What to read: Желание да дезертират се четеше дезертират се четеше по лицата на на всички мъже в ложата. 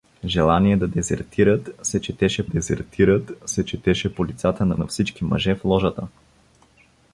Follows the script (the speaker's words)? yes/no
yes